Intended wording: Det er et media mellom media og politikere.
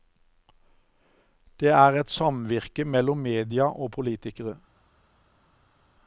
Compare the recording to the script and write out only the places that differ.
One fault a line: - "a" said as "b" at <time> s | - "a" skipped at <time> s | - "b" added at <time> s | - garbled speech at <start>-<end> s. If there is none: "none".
- "media" said as "samvirke" at 2.1 s